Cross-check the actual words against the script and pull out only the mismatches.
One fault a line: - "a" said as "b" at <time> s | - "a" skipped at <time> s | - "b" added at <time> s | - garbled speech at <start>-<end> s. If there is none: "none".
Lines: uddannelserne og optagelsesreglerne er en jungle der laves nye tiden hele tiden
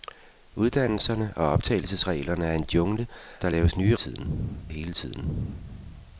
none